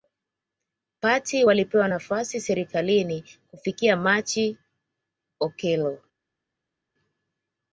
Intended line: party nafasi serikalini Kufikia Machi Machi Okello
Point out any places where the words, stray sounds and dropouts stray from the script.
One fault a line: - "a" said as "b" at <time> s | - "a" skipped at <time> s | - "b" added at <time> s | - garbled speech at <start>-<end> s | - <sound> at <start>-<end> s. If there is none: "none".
- "walipewa" added at 1.4 s
- "Machi" skipped at 4.6 s